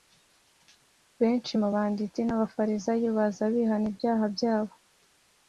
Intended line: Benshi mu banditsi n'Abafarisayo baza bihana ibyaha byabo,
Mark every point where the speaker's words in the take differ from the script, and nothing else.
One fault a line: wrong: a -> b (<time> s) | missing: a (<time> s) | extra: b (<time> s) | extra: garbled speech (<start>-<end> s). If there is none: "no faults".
no faults